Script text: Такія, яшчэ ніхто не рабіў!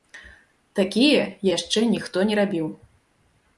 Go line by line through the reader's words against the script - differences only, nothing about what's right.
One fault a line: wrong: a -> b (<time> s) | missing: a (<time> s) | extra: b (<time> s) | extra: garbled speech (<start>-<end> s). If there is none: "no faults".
no faults